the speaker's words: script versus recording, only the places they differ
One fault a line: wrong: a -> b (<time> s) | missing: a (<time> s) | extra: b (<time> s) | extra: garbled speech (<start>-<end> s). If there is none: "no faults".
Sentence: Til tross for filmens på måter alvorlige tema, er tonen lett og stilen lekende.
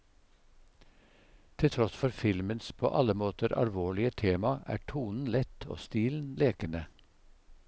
extra: alle (3.0 s)